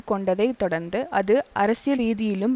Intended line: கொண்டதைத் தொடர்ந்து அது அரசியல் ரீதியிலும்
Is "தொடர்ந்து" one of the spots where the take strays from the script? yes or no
no